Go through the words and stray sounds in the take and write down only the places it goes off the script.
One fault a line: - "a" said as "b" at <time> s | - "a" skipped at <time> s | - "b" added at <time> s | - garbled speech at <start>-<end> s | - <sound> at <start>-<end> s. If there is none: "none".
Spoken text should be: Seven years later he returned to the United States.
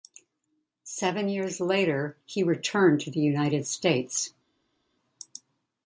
none